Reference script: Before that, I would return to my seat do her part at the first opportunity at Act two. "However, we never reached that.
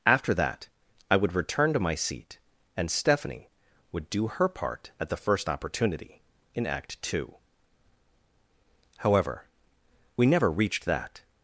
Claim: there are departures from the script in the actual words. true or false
true